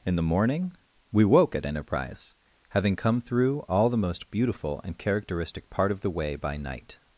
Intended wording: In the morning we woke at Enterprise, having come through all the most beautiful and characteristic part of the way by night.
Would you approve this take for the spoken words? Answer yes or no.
yes